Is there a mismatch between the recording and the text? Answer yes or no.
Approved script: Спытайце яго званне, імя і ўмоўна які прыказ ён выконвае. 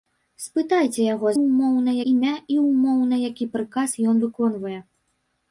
yes